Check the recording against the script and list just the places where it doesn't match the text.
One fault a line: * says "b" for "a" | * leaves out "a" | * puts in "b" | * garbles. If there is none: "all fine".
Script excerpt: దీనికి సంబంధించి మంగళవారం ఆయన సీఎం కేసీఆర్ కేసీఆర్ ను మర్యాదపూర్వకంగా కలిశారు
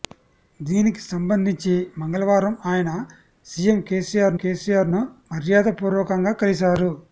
all fine